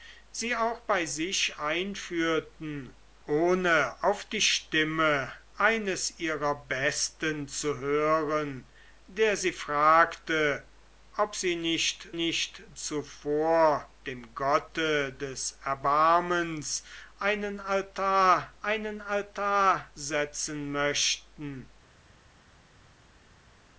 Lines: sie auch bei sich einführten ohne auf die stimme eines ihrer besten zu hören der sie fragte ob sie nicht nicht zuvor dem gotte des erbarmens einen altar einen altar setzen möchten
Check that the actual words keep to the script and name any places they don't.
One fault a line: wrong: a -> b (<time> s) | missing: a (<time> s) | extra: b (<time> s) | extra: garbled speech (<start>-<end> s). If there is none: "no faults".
no faults